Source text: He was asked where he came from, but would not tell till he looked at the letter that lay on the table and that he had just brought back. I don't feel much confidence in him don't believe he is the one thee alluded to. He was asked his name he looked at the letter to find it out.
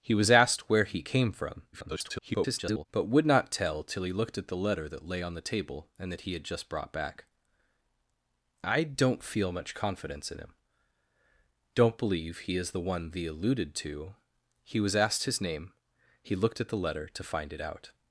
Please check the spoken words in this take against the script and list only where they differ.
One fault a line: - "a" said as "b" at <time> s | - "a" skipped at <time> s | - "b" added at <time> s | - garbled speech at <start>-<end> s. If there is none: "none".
- garbled speech at 1.7-2.9 s